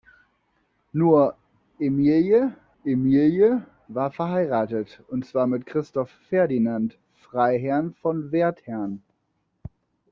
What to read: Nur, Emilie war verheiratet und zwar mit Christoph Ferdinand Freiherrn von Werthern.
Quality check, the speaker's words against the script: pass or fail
fail